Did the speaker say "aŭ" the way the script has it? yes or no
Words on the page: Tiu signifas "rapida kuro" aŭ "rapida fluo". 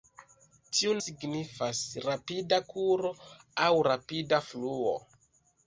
yes